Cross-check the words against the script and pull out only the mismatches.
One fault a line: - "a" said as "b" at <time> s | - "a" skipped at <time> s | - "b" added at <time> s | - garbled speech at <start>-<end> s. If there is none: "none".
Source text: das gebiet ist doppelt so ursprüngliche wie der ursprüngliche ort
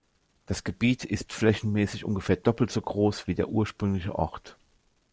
- "flächenmäßig ungefähr" added at 1.3 s
- "ursprüngliche" said as "groß" at 2.8 s